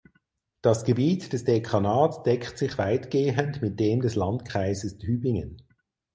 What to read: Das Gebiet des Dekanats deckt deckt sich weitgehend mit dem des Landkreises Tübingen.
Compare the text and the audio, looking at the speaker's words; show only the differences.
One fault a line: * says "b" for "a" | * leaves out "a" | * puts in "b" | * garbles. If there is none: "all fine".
* leaves out "deckt"